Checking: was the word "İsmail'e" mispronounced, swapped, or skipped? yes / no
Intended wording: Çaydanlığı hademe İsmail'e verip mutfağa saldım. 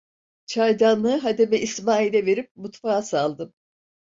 no